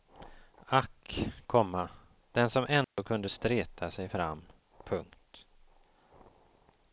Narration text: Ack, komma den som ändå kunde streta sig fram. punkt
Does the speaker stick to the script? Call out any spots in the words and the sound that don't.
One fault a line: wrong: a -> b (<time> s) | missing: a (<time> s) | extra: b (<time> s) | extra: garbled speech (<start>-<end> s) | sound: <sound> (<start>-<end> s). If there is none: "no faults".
sound: dropout (2.8-3.0 s)